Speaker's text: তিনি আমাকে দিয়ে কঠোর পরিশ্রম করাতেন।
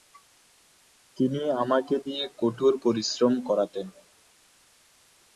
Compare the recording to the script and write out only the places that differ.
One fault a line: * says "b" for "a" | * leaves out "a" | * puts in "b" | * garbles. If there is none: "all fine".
all fine